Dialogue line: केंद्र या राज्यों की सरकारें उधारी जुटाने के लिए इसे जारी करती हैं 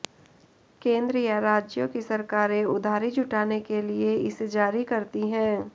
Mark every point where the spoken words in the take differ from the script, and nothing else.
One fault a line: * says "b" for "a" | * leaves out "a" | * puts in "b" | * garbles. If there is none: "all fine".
all fine